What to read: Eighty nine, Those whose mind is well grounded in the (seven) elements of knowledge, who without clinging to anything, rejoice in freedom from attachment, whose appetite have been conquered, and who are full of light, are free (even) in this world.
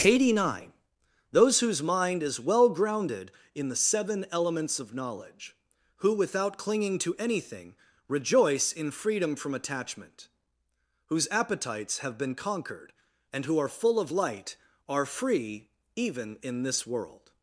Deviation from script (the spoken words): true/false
true